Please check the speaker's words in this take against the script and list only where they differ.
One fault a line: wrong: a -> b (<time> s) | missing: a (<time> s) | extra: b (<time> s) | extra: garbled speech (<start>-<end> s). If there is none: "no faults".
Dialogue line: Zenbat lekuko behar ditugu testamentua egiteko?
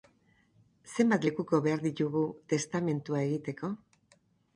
no faults